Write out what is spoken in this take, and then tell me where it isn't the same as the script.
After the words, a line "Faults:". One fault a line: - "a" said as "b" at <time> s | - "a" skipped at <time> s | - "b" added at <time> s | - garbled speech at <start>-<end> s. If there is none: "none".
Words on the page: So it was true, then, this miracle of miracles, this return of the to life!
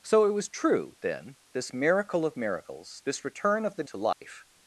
So it was true, then, this miracle of miracles, this return of the to life!
Faults:
none